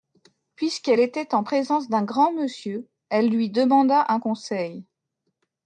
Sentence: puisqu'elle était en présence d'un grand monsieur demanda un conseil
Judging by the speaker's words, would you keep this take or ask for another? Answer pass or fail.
fail